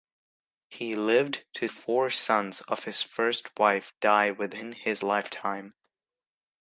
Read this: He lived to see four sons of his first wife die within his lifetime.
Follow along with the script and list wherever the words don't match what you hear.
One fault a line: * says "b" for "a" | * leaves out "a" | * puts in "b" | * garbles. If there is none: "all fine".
* leaves out "see"